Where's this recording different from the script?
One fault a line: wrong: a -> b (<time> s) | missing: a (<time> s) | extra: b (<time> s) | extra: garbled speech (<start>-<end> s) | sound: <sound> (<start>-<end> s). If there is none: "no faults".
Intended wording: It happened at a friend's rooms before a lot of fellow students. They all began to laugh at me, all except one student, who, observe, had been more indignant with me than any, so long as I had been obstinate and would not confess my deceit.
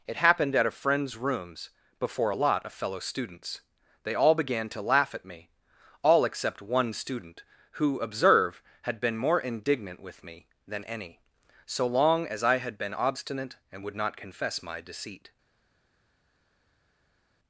no faults